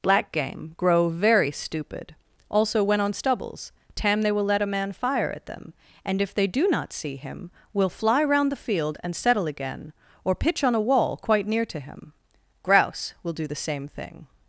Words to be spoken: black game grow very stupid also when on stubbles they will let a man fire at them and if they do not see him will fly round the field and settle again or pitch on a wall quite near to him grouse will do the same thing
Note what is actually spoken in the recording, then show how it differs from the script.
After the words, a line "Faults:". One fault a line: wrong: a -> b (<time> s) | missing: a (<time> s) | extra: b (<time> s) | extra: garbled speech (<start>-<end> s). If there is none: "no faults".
black game grow very stupid also when on stubbles tam they will let a man fire at them and if they do not see him will fly round the field and settle again or pitch on a wall quite near to him grouse will do the same thing
Faults:
extra: tam (4.0 s)